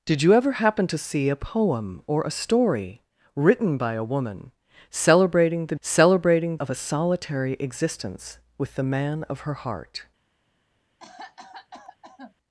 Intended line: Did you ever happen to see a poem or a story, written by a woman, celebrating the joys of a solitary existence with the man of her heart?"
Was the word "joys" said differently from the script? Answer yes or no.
yes